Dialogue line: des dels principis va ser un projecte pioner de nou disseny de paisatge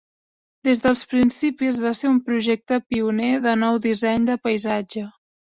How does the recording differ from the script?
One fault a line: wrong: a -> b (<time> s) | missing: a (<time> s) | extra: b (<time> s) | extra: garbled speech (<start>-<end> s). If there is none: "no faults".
no faults